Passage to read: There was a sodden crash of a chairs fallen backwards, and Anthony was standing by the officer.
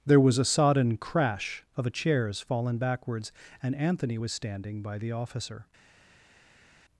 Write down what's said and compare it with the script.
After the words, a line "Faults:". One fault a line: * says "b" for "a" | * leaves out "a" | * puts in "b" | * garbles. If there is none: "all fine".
There was a sodden crash of a chairs fallen backwards, and Anthony was standing by the officer.
Faults:
all fine